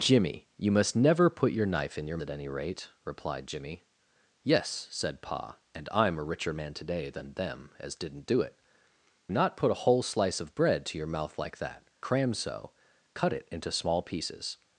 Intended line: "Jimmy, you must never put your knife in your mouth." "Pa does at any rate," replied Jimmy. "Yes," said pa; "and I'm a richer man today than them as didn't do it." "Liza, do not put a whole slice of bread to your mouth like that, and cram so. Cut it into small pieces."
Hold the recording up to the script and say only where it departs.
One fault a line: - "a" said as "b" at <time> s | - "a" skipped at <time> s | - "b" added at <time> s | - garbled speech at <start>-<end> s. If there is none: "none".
- "mouth Pa does" skipped at 2.2 s
- "Liza do" skipped at 8.6 s
- "and" skipped at 11.9 s